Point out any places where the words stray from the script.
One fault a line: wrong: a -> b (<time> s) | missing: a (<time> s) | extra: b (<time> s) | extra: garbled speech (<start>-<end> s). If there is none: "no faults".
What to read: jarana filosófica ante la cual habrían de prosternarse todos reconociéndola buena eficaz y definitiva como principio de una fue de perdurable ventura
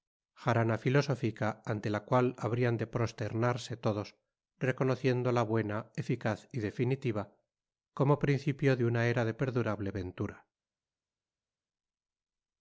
wrong: fue -> era (9.1 s)